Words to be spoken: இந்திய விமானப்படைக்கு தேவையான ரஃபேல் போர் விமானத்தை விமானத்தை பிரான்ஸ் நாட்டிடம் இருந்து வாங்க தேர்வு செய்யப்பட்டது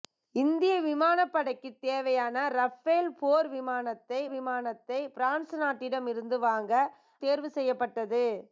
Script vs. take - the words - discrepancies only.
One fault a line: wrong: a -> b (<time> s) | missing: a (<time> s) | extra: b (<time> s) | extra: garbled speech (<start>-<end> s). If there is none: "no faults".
no faults